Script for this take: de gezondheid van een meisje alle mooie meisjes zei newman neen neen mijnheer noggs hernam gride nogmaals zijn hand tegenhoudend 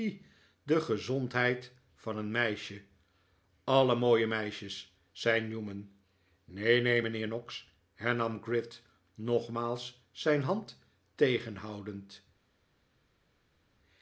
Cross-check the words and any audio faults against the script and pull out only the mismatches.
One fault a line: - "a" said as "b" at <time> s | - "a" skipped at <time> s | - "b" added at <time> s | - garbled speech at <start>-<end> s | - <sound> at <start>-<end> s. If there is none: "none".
none